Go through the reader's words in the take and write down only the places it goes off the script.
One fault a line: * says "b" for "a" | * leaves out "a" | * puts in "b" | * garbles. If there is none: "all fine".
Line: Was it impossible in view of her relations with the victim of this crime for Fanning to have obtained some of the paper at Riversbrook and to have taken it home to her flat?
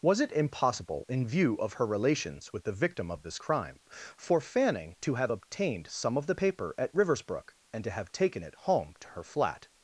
all fine